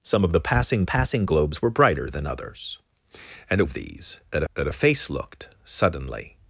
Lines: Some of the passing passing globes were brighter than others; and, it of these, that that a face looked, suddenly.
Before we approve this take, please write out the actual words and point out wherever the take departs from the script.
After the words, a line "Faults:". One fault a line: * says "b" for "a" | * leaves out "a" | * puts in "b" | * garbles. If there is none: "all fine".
Some of the passing passing globes were brighter than others; and, it of these, that that a face looked, suddenly.
Faults:
all fine